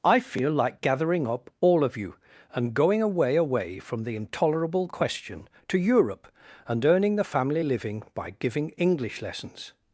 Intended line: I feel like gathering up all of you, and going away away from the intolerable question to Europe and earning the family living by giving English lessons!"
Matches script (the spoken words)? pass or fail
pass